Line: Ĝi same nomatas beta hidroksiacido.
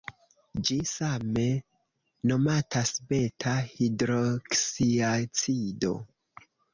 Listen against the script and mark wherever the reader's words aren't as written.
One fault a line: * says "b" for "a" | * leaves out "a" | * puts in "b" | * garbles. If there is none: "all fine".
all fine